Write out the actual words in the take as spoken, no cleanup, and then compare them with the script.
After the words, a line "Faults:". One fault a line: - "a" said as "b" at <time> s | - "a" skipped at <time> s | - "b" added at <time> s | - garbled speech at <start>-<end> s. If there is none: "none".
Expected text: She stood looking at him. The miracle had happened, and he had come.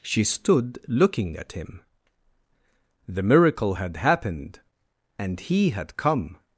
She stood looking at him. The miracle had happened, and he had come.
Faults:
none